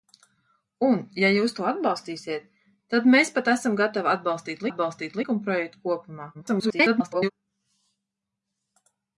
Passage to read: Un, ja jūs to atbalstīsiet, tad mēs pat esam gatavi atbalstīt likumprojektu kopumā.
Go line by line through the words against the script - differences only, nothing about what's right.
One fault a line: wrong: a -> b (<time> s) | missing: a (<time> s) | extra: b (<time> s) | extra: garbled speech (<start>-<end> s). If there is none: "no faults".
extra: atbalstīt (4.7 s)
extra: garbled speech (6.3-7.3 s)